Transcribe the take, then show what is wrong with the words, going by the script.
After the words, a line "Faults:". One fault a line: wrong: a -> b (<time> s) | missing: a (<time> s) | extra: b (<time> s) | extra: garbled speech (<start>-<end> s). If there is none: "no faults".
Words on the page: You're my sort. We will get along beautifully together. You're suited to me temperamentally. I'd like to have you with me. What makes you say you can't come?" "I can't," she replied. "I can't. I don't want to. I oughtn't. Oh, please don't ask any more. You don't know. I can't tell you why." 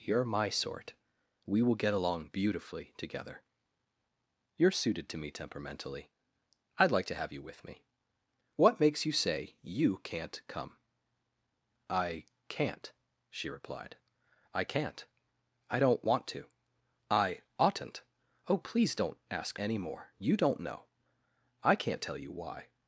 You're my sort. We will get along beautifully together. You're suited to me temperamentally. I'd like to have you with me. What makes you say you can't come?" "I can't," she replied. "I can't. I don't want to. I oughtn't. Oh, please don't ask any more. You don't know. I can't tell you why."
Faults:
no faults